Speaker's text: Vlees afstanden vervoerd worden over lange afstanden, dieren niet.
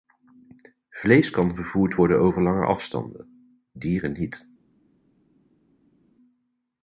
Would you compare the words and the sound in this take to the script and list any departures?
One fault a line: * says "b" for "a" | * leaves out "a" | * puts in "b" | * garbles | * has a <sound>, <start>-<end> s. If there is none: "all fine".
* says "kan" for "afstanden"